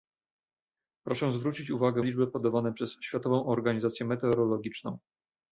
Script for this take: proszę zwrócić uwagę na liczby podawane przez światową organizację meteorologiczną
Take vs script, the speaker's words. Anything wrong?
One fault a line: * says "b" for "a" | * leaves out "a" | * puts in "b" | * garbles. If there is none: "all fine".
* leaves out "na"